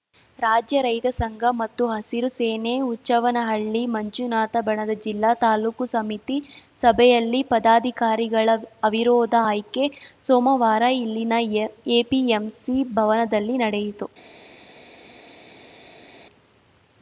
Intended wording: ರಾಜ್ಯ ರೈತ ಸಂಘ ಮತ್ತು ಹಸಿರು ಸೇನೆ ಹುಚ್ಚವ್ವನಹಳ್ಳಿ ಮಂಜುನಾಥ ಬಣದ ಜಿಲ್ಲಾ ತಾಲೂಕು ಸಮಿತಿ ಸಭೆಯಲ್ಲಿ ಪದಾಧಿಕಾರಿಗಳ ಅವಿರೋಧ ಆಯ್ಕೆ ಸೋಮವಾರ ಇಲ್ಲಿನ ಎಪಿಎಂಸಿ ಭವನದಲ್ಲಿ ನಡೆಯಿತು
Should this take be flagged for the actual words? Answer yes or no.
no